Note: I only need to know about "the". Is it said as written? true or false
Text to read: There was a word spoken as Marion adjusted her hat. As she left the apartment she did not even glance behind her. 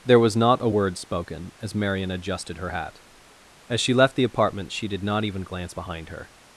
true